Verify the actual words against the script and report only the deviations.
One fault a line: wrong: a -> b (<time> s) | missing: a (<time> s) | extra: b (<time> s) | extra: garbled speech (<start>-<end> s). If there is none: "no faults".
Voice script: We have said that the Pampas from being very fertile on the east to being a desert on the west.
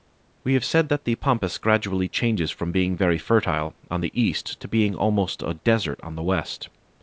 extra: gradually changes (1.6 s)
extra: almost (4.9 s)